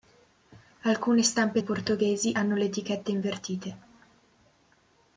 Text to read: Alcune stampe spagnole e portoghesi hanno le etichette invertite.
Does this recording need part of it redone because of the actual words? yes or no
yes